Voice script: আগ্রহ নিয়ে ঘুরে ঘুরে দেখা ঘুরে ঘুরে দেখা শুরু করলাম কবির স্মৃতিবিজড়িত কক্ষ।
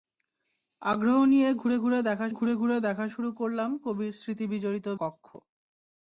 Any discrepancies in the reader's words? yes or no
no